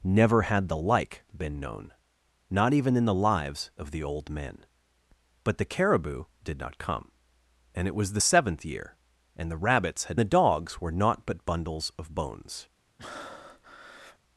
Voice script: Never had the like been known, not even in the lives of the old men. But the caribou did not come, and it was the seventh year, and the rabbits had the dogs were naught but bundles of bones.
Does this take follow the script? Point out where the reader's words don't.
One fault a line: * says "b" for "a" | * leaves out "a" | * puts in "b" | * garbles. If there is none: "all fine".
all fine